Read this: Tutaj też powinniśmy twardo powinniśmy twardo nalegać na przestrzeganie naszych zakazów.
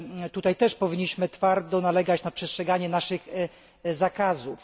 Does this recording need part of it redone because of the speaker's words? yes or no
yes